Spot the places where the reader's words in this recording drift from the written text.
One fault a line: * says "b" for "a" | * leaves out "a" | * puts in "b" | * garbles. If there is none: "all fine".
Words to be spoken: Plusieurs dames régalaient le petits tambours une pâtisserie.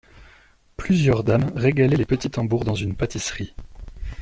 * says "les" for "le"
* puts in "dans"